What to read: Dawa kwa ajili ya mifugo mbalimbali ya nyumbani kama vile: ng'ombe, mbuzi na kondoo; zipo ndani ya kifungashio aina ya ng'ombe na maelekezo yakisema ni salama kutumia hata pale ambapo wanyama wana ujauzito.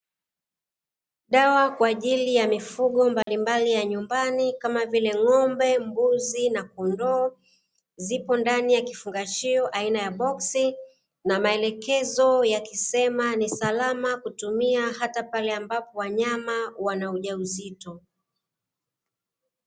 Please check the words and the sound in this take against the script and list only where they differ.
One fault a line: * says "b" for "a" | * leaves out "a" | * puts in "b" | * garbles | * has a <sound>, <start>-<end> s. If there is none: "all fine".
* has a dropout, 3.2-3.3 s
* says "boksi" for "ng'ombe"